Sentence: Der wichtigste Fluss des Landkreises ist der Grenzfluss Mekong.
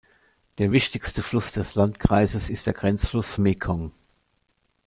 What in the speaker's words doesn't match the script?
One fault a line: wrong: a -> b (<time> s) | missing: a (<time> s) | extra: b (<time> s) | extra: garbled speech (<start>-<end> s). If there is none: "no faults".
no faults